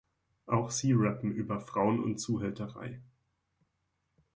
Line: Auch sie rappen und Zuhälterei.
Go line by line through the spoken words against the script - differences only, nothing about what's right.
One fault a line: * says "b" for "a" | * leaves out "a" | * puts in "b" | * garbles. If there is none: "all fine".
* puts in "über Frauen"